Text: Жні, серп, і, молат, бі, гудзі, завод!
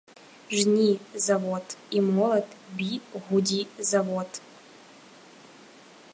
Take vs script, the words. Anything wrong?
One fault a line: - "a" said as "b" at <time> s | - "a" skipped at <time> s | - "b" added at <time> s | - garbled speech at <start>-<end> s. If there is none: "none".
- "серп" said as "завод" at 1.1 s